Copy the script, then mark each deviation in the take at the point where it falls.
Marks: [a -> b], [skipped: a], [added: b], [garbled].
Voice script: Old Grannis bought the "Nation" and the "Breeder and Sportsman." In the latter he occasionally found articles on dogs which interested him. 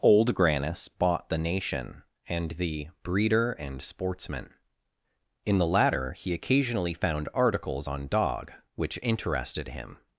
Old Grannis bought the "Nation" and the "Breeder and Sportsman." In the latter he occasionally found articles on [dogs -> dog] which interested him.